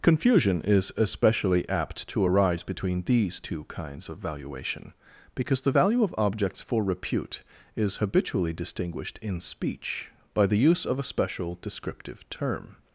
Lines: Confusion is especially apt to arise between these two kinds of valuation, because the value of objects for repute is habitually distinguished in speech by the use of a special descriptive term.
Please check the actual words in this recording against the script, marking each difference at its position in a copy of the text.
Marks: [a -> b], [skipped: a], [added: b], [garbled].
Confusion is especially apt to arise between these two kinds of valuation, because the value of objects for repute is habitually distinguished in speech by the use of a special descriptive term.